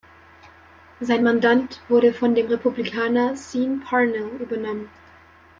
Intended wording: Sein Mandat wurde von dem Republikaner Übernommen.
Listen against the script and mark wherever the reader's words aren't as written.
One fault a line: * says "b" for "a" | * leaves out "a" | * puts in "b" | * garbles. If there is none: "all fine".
* puts in "Sean Parnell"